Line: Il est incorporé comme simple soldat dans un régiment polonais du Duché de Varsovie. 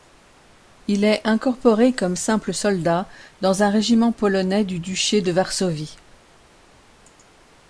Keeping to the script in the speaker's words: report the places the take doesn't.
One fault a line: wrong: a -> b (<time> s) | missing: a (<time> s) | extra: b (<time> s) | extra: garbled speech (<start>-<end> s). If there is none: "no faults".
no faults